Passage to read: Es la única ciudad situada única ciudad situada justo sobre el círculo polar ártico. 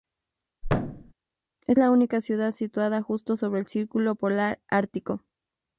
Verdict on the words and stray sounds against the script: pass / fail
fail